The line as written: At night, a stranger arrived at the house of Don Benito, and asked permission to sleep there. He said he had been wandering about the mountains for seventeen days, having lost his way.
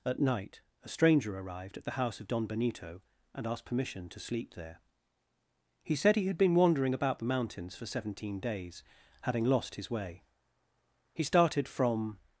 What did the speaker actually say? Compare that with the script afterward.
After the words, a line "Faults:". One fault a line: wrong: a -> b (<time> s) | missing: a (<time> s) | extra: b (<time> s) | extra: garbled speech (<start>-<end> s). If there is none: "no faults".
At night, a stranger arrived at the house of Don Benito, and asked permission to sleep there. He said he had been wandering about the mountains for seventeen days, having lost his way. He started from
Faults:
extra: He started from (11.1 s)